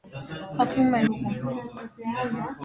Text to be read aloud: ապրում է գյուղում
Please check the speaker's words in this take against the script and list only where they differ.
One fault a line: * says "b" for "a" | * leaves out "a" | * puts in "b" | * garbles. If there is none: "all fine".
all fine